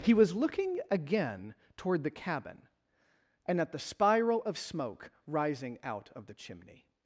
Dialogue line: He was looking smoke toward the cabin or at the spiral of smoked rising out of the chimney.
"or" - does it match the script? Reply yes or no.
no